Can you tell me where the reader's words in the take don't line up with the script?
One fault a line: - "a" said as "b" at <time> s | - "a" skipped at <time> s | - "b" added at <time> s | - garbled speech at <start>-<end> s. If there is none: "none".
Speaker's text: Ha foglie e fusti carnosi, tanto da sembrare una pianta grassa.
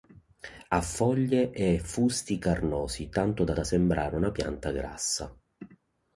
- "da" added at 3.5 s